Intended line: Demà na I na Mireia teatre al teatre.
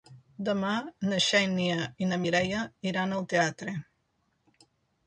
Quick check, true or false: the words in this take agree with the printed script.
false